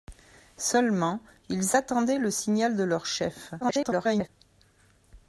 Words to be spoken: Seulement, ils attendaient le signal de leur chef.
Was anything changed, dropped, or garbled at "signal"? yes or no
no